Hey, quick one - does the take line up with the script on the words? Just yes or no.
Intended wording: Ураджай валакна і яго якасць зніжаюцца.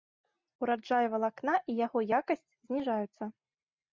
yes